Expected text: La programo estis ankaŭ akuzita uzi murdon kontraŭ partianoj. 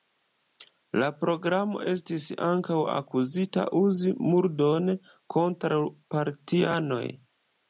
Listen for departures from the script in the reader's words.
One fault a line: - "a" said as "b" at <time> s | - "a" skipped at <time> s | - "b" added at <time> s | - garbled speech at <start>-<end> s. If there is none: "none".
none